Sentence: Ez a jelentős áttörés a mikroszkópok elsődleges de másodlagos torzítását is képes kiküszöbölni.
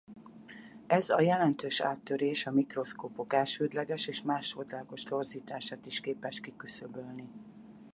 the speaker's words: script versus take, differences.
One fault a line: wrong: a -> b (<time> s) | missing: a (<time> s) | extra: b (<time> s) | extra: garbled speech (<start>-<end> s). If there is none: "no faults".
wrong: de -> és (4.1 s)